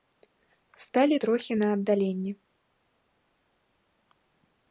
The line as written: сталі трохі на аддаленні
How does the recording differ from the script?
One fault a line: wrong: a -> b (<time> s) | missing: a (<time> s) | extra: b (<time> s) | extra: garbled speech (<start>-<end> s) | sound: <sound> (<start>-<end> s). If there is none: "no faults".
no faults